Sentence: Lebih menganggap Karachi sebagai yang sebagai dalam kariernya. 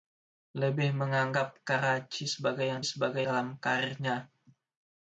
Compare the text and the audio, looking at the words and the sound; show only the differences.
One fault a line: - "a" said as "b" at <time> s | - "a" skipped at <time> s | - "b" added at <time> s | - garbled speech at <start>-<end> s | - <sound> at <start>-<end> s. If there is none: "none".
none